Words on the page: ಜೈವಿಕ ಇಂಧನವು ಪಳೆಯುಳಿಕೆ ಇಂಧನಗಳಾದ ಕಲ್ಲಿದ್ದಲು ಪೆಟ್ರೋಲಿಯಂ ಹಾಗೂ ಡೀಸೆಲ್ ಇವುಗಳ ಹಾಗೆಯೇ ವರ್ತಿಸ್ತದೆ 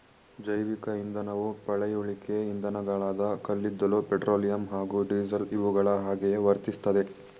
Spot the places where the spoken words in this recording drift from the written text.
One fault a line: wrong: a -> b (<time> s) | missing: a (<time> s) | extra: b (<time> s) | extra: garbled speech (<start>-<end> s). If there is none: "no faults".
no faults